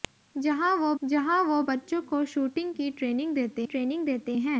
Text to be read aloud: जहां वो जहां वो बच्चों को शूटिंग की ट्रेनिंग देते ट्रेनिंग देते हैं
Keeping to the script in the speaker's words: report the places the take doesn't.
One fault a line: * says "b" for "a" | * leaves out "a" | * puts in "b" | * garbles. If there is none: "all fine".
all fine